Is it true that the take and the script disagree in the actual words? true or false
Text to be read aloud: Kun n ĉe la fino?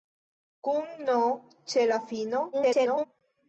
true